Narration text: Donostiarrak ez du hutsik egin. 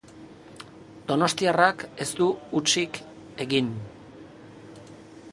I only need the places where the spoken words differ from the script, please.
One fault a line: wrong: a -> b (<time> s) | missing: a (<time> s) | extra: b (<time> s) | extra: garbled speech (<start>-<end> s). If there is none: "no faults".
no faults